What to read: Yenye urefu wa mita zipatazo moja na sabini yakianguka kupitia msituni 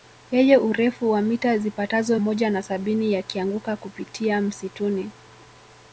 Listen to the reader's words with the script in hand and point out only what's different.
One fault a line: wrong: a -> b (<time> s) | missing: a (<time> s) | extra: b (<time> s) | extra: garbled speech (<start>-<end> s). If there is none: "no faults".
no faults